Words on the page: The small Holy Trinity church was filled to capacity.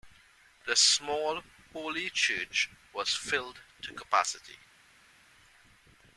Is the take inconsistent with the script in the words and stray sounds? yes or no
yes